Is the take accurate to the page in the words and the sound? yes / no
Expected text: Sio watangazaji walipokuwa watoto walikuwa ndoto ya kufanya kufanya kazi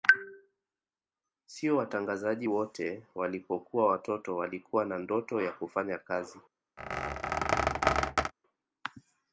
no